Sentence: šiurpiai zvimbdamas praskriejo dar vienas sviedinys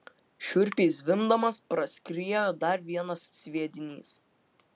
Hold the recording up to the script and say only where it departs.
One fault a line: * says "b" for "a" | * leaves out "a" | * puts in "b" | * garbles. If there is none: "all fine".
all fine